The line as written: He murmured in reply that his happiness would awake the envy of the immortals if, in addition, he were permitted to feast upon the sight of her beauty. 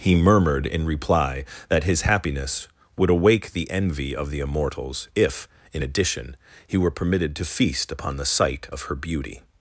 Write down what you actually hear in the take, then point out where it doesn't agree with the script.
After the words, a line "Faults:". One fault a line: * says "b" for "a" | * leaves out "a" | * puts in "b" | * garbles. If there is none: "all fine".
He murmured in reply that his happiness would awake the envy of the immortals if, in addition, he were permitted to feast upon the sight of her beauty.
Faults:
all fine